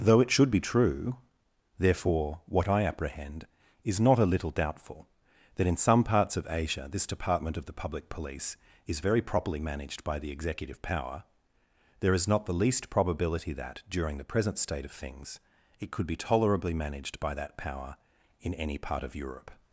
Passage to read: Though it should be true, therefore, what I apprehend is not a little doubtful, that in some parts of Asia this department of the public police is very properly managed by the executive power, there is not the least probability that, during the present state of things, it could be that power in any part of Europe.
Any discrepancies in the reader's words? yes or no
yes